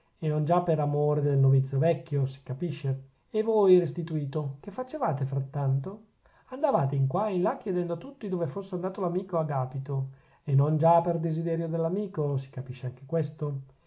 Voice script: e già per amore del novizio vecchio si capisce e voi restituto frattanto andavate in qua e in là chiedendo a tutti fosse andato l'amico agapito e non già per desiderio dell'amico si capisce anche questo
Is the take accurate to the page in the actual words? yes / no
no